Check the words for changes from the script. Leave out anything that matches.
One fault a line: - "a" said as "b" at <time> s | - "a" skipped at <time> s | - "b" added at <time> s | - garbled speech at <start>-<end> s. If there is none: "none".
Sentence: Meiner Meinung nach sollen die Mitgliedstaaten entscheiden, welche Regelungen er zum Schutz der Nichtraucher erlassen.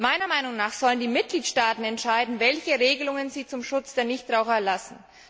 - "er" said as "sie" at 3.3 s